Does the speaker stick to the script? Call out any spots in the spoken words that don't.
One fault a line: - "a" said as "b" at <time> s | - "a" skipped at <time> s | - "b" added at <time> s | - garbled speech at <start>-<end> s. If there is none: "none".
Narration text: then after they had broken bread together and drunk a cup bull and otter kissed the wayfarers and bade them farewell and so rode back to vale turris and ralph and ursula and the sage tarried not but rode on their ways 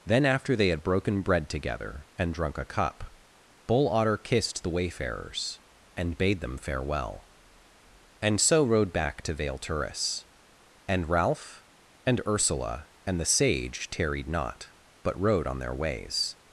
- "and" skipped at 3.9 s